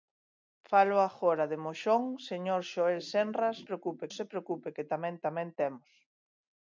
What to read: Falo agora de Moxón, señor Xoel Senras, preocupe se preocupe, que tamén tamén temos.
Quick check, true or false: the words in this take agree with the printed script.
true